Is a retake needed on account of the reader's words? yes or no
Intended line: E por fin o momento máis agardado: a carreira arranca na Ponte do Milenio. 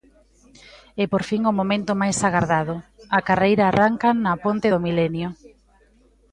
no